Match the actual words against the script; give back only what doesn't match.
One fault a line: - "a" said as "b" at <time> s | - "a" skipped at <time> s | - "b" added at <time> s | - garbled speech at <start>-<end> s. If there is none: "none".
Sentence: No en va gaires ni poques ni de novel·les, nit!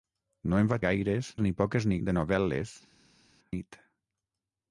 none